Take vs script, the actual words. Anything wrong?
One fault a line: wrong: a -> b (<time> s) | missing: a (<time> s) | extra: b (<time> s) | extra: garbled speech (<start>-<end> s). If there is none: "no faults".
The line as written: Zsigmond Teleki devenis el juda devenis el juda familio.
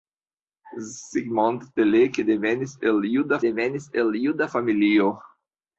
no faults